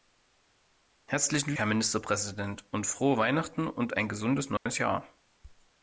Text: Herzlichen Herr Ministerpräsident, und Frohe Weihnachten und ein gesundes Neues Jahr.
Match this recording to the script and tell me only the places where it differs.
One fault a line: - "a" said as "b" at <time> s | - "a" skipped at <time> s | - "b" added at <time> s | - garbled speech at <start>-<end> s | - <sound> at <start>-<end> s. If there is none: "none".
- dropout at 4.6-4.7 s